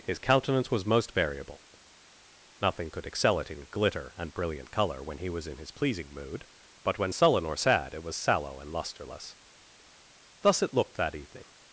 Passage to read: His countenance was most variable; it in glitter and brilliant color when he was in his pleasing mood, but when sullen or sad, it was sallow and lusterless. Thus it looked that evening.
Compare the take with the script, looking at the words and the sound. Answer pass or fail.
fail